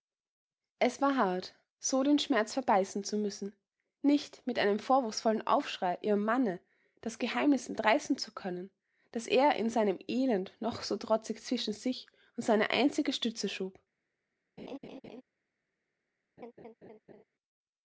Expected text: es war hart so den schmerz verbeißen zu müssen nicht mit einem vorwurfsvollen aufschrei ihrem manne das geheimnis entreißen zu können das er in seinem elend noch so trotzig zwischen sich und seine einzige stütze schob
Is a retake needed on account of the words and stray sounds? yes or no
yes